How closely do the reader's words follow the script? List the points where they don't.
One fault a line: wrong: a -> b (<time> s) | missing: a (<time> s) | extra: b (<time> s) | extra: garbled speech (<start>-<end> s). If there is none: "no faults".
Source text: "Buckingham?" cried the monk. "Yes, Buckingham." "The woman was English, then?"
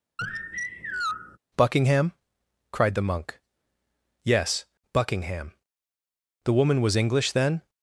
no faults